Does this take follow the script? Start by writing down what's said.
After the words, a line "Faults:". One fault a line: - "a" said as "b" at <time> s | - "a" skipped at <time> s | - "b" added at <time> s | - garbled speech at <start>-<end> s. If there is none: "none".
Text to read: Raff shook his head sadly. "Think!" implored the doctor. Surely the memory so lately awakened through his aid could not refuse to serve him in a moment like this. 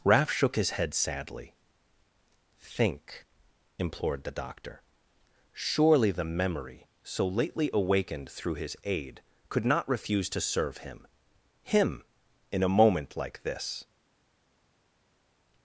Raff shook his head sadly. "Think!" implored the doctor. Surely the memory so lately awakened through his aid could not refuse to serve him him in a moment like this.
Faults:
- "him" added at 11.6 s